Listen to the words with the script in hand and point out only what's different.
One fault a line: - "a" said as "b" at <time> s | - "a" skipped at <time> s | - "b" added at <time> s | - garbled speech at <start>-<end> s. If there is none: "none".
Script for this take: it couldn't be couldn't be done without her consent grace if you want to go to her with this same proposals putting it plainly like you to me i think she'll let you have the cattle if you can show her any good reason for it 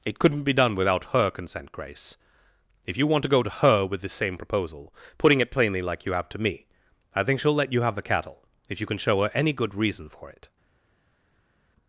- "couldn't be" skipped at 0.5 s
- "proposals" said as "proposal" at 4.4 s
- "have" added at 6.1 s